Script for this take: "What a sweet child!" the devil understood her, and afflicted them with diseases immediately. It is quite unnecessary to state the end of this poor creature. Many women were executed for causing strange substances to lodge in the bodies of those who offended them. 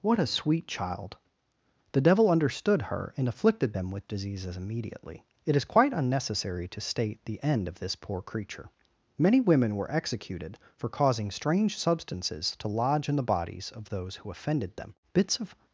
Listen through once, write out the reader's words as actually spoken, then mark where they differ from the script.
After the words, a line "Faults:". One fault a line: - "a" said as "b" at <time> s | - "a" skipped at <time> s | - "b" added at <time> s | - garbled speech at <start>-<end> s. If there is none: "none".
"What a sweet child!" the devil understood her, and afflicted them with diseases immediately. It is quite unnecessary to state the end of this poor creature. Many women were executed for causing strange substances to lodge in the bodies of those who offended them. Bits of
Faults:
- "Bits of" added at 15.1 s